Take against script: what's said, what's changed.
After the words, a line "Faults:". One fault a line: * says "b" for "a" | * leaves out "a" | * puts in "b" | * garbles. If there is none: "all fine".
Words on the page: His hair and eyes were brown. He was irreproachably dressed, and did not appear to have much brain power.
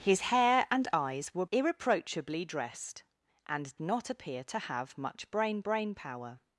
His hair and eyes were irreproachably dressed, and not appear to have much brain brain power.
Faults:
* leaves out "brown He was"
* leaves out "did"
* puts in "brain"